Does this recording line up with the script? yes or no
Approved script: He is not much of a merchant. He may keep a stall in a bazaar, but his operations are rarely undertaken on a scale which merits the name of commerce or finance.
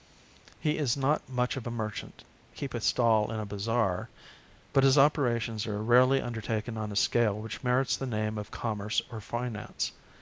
no